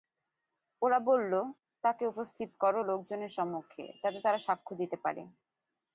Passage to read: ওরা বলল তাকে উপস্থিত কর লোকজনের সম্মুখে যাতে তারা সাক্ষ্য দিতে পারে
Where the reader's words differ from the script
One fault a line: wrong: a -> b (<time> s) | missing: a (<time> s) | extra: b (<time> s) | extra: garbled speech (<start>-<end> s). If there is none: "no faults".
no faults